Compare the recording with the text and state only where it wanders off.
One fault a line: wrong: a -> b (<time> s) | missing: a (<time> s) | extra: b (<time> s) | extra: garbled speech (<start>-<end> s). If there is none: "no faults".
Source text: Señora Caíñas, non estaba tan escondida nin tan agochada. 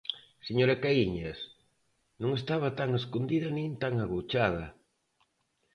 no faults